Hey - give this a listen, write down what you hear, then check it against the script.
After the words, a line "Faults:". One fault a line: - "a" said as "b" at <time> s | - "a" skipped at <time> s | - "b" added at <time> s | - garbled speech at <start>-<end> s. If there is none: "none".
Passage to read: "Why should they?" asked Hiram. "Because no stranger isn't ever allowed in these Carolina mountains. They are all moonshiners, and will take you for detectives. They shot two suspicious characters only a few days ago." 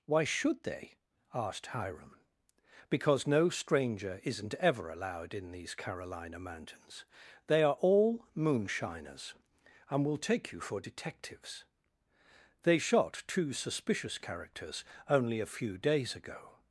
"Why should they?" asked Hiram. "Because no stranger isn't ever allowed in these Carolina mountains. They are all moonshiners, and will take you for detectives. They shot two suspicious characters only a few days ago."
Faults:
none